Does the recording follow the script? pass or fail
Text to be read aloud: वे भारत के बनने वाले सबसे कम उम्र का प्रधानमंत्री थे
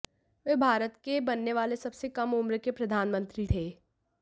fail